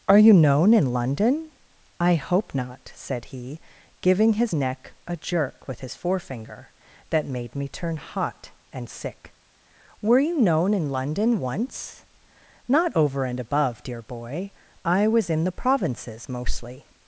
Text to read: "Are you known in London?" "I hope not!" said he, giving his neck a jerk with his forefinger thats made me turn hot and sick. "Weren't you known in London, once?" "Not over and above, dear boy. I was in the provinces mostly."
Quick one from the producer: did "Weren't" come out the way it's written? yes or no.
no